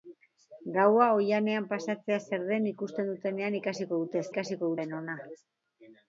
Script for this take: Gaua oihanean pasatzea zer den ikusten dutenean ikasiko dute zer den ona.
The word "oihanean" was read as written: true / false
true